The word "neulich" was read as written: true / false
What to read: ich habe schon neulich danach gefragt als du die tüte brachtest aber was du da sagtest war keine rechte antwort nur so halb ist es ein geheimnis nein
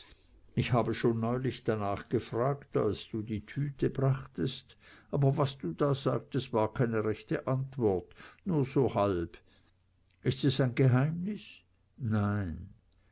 true